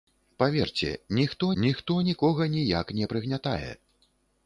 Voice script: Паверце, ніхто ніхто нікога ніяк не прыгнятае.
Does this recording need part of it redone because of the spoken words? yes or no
no